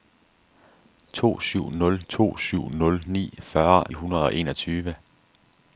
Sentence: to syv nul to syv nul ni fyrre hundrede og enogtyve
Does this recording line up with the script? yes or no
yes